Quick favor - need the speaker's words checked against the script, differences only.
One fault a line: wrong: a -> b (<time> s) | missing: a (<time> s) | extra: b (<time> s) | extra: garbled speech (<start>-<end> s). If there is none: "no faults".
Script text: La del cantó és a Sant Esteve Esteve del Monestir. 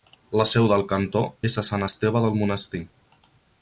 extra: seu (0.5 s)
missing: Esteve (2.3 s)